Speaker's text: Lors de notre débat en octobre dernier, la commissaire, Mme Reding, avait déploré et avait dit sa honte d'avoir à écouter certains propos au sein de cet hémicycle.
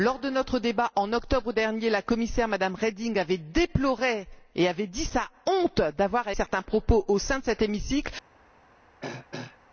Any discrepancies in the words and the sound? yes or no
yes